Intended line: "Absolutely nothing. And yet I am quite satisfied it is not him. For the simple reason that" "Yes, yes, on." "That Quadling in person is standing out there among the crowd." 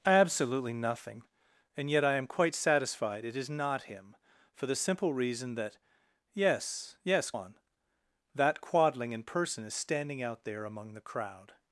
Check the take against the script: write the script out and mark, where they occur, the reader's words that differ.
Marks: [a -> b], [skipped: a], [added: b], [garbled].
"Absolutely nothing. And yet I am quite satisfied it is not him. For the simple reason that" "Yes, yes, on." "That Quadling in person is standing out there among the crowd."